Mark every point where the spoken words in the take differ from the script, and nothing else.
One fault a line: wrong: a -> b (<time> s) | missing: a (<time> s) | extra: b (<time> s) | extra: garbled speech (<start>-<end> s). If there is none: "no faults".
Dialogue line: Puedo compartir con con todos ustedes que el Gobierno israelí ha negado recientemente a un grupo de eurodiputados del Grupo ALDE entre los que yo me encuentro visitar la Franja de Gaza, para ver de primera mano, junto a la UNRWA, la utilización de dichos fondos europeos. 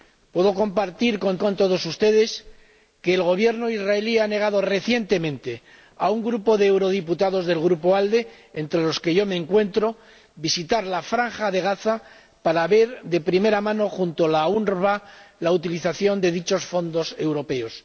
no faults